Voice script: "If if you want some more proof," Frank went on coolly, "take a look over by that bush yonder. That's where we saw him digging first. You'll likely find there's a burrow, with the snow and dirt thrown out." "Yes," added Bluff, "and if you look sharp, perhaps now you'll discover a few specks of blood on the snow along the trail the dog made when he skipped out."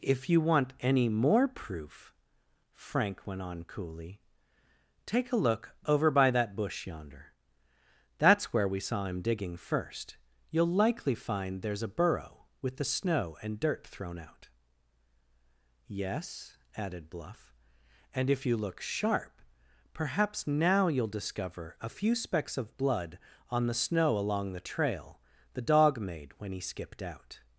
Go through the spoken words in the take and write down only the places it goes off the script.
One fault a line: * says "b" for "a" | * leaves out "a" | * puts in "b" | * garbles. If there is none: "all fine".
* leaves out "if"
* says "any" for "some"